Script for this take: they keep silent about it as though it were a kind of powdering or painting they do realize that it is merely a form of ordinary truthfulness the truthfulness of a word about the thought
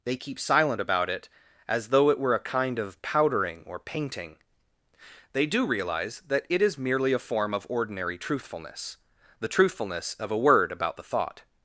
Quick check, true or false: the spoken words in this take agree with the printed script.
true